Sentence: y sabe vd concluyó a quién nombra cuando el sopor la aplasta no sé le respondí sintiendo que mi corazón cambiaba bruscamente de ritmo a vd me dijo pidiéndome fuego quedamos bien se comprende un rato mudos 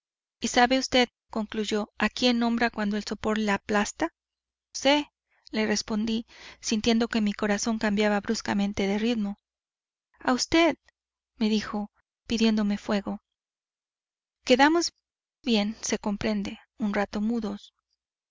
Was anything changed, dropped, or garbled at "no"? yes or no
yes